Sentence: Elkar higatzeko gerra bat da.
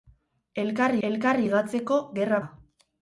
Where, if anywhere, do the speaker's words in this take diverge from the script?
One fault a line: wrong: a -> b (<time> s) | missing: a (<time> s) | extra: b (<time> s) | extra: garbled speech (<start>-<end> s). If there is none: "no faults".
extra: elkar (1.1 s)
missing: bat (2.4 s)